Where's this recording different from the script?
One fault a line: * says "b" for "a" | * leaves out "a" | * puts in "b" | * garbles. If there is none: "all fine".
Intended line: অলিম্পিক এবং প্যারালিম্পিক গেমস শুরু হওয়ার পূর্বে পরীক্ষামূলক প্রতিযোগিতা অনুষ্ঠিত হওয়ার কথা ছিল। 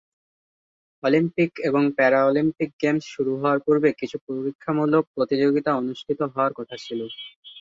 * puts in "কিছু"